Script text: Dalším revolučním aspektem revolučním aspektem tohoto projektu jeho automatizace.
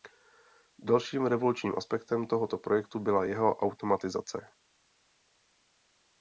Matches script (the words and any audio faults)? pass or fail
fail